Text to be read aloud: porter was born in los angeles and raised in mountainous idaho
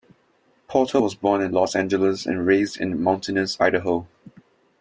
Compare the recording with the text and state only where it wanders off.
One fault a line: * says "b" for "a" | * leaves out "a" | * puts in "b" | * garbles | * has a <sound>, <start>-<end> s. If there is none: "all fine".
all fine